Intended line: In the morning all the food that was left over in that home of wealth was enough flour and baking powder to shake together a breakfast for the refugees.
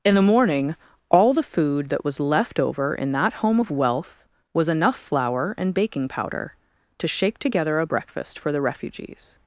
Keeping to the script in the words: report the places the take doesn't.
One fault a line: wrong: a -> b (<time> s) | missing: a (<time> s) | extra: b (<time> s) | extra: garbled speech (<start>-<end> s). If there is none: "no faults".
no faults